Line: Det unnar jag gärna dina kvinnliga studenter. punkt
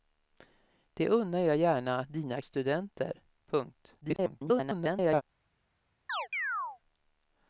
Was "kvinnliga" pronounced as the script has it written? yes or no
no